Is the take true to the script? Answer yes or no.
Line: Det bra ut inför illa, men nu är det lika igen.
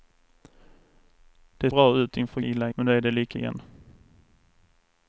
yes